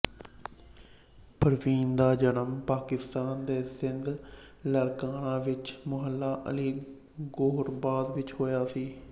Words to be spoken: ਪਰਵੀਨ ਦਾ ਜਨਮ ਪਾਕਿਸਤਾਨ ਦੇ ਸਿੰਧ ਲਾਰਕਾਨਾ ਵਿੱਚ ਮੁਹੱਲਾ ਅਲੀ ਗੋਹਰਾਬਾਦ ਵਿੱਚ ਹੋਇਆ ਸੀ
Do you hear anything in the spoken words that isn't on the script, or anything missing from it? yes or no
no